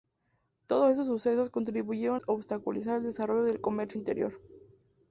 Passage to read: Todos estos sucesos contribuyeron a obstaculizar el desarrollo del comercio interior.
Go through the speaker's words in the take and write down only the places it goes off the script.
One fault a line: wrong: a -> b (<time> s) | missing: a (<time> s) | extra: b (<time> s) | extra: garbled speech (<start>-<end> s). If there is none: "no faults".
missing: a (2.2 s)